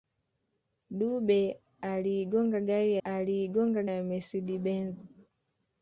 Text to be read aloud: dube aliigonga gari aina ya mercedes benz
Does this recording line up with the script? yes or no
no